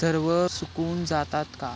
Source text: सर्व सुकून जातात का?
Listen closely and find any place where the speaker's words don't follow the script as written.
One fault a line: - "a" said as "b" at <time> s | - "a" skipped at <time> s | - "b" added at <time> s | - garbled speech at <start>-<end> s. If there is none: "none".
none